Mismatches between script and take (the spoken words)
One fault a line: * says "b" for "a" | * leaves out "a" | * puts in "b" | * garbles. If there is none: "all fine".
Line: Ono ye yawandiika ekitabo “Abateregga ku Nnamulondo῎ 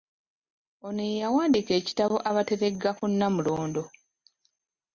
all fine